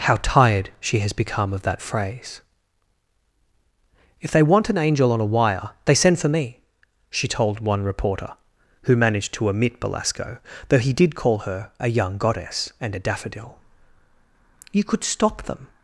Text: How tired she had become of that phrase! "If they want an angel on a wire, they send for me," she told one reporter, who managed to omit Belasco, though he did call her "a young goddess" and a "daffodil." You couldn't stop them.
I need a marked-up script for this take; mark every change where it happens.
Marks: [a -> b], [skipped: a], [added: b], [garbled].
How tired she [had -> has] become of that phrase! "If they want an angel on a wire, they send for me," she told one reporter, who managed to omit Belasco, though he did call her "a young goddess" and a "daffodil." You [couldn't -> could] stop them.